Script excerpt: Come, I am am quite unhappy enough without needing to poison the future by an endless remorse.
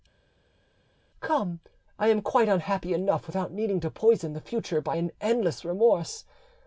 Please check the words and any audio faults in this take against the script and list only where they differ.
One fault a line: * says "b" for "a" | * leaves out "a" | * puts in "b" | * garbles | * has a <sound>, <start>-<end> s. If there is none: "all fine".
* leaves out "am"